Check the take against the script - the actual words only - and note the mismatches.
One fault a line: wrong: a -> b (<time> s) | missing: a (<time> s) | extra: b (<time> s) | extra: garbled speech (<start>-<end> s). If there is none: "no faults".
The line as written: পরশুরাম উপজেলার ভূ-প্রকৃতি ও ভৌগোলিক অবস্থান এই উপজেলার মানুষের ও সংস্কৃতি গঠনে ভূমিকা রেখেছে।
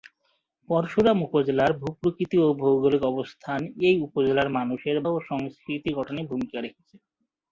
no faults